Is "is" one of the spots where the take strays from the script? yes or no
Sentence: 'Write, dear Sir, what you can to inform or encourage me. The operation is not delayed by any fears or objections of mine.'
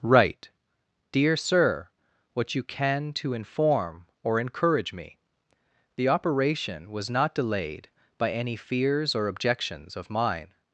yes